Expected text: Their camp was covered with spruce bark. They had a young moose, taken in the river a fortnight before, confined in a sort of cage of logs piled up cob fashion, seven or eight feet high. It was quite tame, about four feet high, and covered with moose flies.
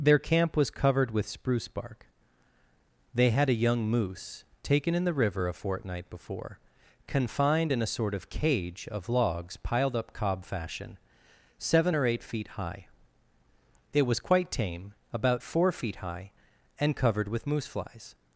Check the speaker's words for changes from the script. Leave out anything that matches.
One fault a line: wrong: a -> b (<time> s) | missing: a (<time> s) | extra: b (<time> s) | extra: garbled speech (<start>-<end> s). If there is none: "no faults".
no faults